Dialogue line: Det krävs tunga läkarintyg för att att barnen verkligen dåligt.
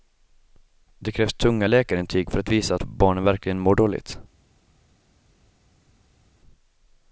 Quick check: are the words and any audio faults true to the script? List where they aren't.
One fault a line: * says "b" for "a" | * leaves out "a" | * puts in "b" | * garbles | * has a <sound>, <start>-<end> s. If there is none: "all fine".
* puts in "visa"
* puts in "mår"